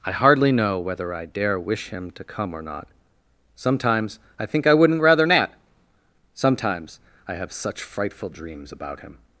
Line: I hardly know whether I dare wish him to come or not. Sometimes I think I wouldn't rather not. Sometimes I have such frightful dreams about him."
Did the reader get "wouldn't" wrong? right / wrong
right